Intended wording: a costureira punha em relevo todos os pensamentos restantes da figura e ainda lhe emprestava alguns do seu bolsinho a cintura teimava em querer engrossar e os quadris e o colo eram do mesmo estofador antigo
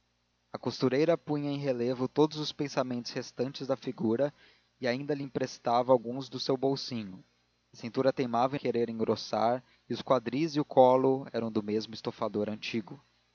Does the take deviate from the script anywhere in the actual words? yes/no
no